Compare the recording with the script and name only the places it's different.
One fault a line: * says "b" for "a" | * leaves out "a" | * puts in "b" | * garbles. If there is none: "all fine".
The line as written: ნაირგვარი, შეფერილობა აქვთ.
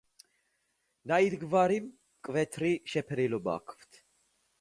* puts in "მკვეთრი"